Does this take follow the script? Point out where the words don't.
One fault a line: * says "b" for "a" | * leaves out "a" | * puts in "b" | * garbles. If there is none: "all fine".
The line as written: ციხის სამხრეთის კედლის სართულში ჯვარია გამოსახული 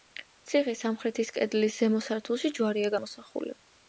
* puts in "ზემო"